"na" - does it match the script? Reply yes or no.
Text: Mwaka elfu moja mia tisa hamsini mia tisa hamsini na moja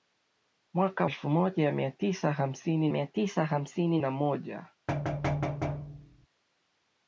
yes